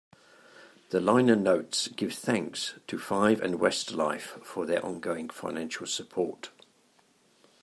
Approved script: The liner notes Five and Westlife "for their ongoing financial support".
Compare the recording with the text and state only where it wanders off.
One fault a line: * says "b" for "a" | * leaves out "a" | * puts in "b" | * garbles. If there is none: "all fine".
* puts in "give thanks to"